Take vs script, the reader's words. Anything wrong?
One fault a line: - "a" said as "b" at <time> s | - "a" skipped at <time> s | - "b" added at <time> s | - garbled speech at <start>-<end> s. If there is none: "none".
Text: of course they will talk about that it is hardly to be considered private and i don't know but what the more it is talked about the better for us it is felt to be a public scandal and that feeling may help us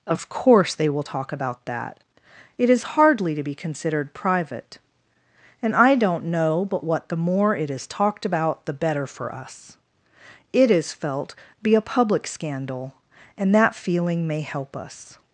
- "to" skipped at 11.3 s